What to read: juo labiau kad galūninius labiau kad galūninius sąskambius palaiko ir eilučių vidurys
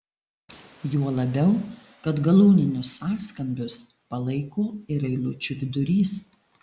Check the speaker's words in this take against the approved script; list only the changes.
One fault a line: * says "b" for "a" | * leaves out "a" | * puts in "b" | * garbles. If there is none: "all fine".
* leaves out "labiau kad galūninius"